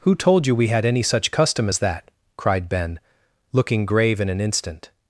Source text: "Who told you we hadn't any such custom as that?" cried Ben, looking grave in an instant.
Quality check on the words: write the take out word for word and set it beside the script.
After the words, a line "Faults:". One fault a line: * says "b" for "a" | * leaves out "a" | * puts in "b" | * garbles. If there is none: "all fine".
"Who told you we had any such custom as that?" cried Ben, looking grave in an instant.
Faults:
* says "had" for "hadn't"